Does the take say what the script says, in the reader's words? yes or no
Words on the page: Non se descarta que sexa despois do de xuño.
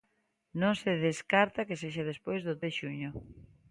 yes